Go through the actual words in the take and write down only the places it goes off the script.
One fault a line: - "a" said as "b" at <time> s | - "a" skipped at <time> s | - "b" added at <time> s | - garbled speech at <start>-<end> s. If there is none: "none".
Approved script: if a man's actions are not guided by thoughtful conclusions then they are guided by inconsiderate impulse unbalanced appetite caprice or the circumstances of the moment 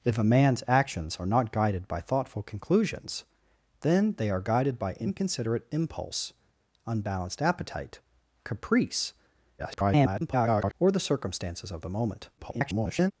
- garbled speech at 9.6-10.7 s
- garbled speech at 12.4-13.1 s